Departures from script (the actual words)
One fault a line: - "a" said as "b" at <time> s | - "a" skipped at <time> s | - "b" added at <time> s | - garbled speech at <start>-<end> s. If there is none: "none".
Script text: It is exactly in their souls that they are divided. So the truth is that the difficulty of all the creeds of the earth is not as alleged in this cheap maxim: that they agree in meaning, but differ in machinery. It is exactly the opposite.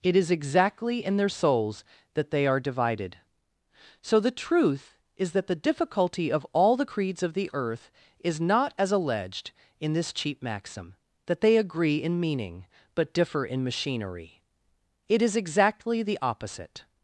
none